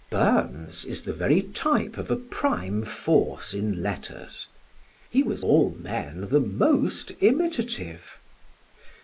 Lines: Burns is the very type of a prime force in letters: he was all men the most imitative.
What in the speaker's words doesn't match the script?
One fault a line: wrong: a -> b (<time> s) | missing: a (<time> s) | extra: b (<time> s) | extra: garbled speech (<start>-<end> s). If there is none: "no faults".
no faults